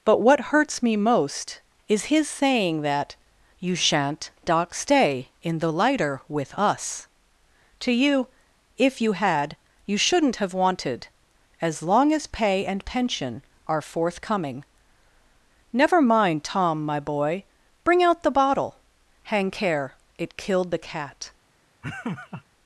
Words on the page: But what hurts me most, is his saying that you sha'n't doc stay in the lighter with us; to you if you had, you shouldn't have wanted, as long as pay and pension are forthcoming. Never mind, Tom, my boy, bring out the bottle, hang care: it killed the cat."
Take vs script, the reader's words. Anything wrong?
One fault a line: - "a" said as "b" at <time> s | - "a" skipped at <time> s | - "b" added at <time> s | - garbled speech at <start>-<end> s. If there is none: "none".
none